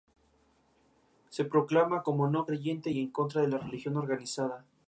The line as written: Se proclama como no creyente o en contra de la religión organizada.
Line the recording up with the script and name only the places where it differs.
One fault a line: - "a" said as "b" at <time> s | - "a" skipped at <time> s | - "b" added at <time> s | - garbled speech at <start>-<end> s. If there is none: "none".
- "o" said as "y" at 2.9 s